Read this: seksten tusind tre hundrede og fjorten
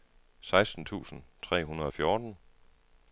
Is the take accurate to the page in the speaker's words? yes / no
yes